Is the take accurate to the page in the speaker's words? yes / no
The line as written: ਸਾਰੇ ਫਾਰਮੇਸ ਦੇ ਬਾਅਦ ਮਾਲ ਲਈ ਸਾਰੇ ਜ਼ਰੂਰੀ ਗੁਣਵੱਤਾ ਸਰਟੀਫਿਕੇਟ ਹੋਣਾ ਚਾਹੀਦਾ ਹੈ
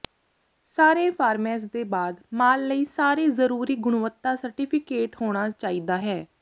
yes